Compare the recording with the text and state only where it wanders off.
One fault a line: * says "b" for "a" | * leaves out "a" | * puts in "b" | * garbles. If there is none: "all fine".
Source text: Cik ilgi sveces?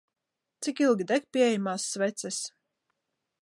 * puts in "deg pieejamās"